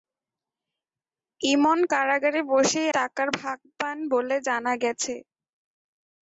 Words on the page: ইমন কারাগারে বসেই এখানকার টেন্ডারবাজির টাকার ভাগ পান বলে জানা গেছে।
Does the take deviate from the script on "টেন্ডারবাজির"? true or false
true